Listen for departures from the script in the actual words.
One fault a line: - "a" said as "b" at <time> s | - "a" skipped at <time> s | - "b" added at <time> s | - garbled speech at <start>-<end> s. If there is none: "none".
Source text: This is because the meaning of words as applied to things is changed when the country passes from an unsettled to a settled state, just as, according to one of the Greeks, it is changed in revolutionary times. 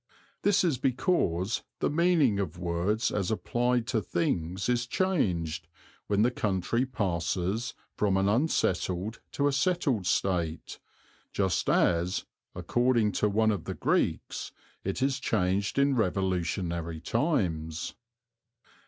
none